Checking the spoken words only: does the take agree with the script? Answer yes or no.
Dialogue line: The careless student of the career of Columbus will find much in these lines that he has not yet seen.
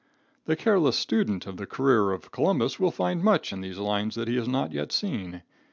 yes